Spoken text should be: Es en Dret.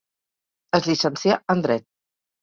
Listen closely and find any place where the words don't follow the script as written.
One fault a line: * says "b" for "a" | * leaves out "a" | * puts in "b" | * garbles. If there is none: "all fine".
* puts in "llicencià"